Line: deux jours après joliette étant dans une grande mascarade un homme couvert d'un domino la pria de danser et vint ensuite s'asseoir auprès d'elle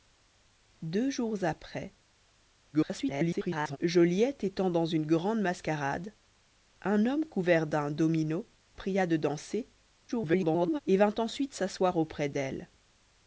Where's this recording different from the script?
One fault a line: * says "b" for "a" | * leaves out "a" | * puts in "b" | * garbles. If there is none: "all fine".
* garbles
* leaves out "la"
* garbles